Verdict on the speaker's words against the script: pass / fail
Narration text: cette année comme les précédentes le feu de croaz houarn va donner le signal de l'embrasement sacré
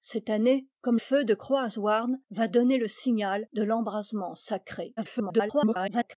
fail